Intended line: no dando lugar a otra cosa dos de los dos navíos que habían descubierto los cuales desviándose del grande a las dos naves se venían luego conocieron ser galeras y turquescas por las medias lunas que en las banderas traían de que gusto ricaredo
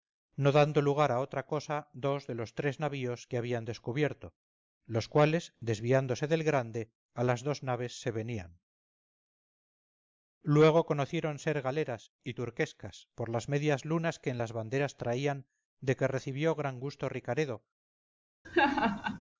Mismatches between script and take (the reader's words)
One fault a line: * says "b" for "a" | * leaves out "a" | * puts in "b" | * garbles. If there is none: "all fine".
* says "tres" for "dos"
* puts in "recibió gran"